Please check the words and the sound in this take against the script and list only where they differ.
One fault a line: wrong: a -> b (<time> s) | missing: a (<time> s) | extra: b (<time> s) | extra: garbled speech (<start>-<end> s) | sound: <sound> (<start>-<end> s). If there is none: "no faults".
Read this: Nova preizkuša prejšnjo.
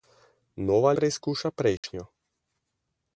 sound: dropout (1.8-1.8 s)